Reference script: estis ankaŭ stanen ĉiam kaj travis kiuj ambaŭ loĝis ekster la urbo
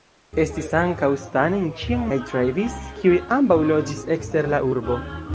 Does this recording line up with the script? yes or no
yes